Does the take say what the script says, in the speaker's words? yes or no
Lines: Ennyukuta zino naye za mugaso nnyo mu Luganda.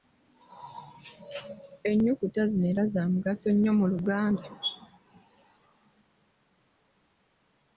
no